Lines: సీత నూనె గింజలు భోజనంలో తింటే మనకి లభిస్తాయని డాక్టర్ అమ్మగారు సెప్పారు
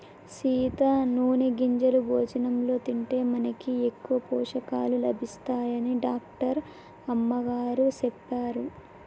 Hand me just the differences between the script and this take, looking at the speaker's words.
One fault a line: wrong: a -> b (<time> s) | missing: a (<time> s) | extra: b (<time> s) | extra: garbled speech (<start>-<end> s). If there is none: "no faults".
extra: ఎక్కువ పోషకాలు (3.9 s)